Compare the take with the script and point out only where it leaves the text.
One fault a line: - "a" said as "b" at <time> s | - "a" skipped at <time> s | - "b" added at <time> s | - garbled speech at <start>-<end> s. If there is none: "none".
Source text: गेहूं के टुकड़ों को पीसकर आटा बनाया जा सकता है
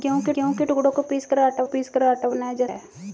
- "गेहूं के" added at 0.3 s
- "पीसकर आटा" added at 1.6 s
- "सकता" skipped at 2.7 s